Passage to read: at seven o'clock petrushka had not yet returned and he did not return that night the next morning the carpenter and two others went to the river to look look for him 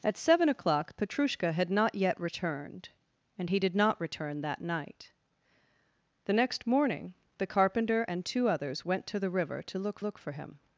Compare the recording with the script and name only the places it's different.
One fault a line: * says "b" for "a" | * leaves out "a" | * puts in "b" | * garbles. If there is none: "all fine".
all fine